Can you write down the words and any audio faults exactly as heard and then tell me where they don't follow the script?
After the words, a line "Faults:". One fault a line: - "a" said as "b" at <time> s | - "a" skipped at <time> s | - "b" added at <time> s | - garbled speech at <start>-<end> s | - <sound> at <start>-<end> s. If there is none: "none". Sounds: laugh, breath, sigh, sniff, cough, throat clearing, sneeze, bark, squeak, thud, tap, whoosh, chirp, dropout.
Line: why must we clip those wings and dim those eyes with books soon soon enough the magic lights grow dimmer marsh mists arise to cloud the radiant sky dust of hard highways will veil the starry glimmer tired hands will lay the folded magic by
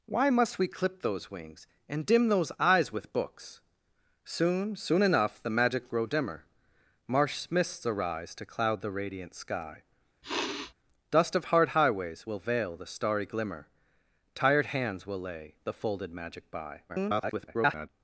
why must we clip those wings and dim those eyes with books soon soon enough the magic grow dimmer marsh mists arise to cloud the radiant sky dust of hard highways will veil the starry glimmer tired hands will lay the folded magic by [garbled]
Faults:
- "lights" skipped at 5.9 s
- sniff at 10.2-10.7 s
- garbled speech at 16.9-17.9 s